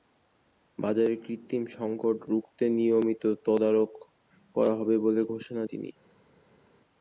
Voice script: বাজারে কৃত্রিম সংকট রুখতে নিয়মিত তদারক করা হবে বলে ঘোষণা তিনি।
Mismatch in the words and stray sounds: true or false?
false